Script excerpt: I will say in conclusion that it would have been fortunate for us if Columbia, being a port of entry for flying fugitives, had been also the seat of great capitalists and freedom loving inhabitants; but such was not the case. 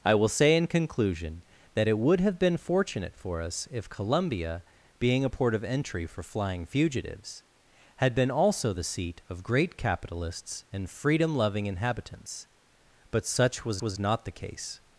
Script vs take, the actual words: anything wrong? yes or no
yes